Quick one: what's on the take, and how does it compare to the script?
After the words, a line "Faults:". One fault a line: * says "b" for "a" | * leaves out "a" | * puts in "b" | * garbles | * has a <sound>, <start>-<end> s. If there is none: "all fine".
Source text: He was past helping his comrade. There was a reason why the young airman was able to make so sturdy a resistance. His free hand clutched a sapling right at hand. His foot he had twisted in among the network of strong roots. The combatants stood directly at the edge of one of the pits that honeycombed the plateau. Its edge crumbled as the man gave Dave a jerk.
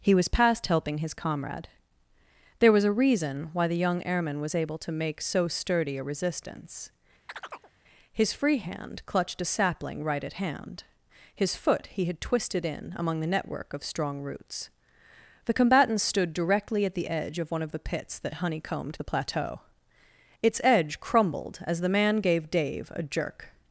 He was past helping his comrade. There was a reason why the young airman was able to make so sturdy a resistance. His free hand clutched a sapling right at hand. His foot he had twisted in among the network of strong roots. The combatants stood directly at the edge of one of the pits that honeycombed the plateau. Its edge crumbled as the man gave Dave a jerk.
Faults:
* has a chirp, 7.3-7.7 s